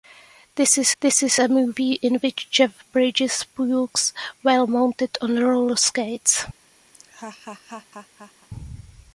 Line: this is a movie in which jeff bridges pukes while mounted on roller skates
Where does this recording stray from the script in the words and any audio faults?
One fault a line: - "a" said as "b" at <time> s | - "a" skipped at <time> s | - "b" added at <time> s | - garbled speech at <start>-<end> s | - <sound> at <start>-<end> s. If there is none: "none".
- "this is" added at 1.0 s
- laugh at 6.9-8.5 s